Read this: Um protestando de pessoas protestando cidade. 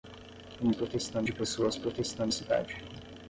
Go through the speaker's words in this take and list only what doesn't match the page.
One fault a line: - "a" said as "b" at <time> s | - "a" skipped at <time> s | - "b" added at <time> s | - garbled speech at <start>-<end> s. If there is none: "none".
none